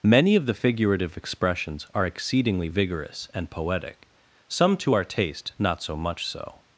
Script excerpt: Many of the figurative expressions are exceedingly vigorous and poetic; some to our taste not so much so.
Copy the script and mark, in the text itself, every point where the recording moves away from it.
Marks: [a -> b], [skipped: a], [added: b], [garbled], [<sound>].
Many of the figurative expressions are exceedingly vigorous and poetic; some to our taste not so much so.